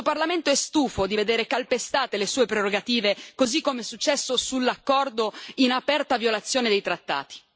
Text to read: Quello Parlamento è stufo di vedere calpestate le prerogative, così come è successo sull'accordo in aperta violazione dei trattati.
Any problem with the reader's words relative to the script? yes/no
yes